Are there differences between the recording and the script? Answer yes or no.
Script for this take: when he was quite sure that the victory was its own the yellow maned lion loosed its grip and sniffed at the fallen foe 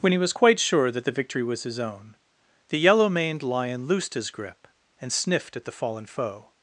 yes